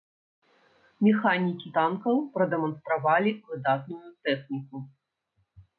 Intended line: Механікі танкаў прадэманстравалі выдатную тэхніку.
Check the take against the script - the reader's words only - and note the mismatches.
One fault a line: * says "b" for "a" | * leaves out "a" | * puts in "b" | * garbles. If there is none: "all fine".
all fine